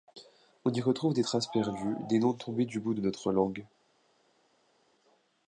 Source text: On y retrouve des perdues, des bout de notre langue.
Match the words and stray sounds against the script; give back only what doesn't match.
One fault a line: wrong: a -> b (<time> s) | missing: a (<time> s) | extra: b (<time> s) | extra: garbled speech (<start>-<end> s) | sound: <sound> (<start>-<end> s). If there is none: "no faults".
extra: traces (1.2 s)
extra: noms tombés du (2.2 s)